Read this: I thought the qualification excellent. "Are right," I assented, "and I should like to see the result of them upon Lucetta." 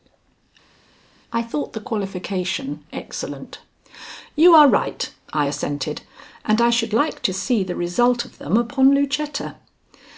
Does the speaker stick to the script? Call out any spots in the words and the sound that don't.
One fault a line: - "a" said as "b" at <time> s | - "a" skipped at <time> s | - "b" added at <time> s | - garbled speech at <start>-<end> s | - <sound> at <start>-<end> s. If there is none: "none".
- "You" added at 4.3 s